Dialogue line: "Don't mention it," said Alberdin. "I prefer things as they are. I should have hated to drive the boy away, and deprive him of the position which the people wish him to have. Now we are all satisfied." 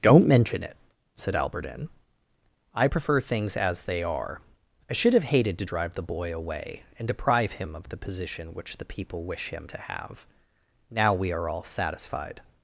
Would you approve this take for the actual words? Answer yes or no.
yes